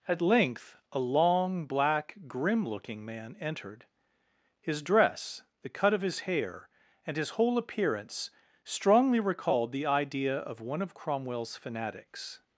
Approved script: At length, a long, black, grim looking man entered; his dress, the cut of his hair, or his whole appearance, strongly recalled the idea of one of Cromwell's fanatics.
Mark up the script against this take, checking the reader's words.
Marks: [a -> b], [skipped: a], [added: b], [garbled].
At length, a long, black, grim looking man entered; his dress, the cut of his hair, [or -> and] his whole appearance, strongly recalled the idea of one of Cromwell's fanatics.